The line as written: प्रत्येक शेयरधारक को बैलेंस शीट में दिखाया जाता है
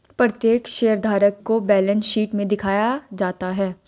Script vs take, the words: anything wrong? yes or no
no